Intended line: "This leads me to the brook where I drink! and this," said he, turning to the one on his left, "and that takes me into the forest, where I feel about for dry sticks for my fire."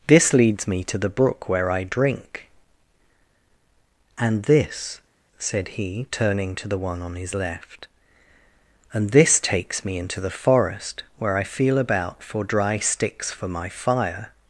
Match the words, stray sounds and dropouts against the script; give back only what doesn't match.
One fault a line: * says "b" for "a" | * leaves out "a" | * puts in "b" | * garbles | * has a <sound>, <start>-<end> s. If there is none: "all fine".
* says "this" for "that"